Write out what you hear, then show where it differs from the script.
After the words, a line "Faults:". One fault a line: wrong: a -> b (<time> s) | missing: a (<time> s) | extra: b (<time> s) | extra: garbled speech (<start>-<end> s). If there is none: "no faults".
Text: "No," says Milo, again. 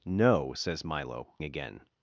"No," says Milo, again.
Faults:
no faults